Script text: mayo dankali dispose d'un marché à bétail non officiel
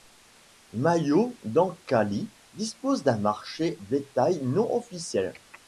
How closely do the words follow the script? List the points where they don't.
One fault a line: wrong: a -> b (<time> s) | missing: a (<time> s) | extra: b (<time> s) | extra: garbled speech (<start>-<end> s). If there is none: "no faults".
missing: à (3.8 s)